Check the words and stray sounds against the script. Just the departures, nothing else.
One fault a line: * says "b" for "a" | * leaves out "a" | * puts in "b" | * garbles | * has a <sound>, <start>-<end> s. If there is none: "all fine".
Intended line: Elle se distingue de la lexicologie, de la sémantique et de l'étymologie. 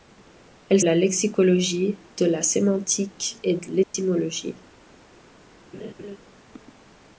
* leaves out "se distingue de"
* has a dropout, 3.8-3.9 s
* has a laugh, 5.7-6.2 s